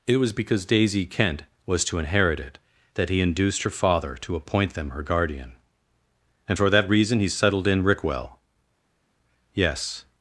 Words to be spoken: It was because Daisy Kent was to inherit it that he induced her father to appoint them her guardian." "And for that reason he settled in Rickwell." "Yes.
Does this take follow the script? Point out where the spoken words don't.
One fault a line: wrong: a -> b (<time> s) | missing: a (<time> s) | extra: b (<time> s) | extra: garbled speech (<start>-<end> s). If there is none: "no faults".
no faults